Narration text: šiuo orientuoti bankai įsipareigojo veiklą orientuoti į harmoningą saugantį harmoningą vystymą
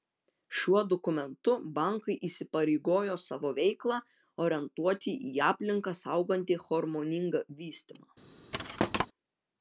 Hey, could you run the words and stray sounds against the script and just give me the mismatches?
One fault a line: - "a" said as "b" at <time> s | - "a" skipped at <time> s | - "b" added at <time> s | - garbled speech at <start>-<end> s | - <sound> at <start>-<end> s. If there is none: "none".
- "orientuoti" said as "dokumentu" at 0.9 s
- "savo" added at 3.3 s
- "harmoningą" said as "aplinką" at 5.5 s
- thud at 8.5-9.1 s